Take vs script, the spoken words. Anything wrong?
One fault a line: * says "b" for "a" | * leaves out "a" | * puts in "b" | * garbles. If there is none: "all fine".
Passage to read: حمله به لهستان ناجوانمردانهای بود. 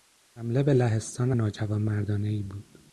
all fine